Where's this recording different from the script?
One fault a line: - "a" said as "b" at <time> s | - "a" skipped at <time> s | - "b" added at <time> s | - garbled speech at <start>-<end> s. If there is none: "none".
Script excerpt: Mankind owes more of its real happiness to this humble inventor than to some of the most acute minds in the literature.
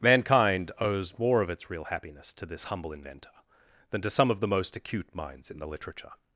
none